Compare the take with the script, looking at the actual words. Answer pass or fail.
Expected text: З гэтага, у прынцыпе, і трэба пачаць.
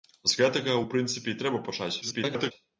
fail